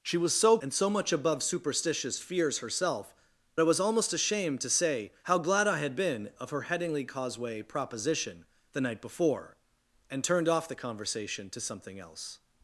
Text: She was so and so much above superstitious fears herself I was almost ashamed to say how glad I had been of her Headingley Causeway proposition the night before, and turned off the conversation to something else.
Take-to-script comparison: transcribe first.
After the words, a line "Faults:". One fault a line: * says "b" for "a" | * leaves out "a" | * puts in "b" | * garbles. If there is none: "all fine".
She was so and so much above superstitious fears herself I was almost ashamed to say how glad I had been of her Headingley Causeway proposition the night before, and turned off the conversation to something else.
Faults:
all fine